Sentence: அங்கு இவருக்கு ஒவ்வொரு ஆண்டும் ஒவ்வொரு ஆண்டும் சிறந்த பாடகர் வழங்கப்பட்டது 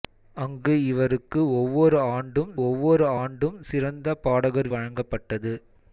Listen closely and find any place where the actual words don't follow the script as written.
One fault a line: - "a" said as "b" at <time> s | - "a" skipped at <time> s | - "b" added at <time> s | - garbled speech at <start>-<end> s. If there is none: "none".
none